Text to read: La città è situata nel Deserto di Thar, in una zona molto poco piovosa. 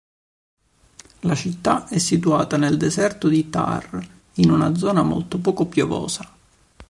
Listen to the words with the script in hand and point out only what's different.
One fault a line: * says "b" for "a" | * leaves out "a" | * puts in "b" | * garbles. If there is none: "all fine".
all fine